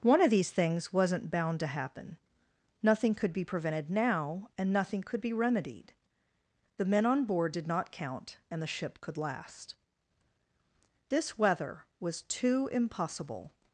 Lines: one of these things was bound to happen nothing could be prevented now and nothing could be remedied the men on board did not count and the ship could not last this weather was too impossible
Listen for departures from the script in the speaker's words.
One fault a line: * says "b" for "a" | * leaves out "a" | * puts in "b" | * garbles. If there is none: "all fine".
* says "wasn't" for "was"
* leaves out "not"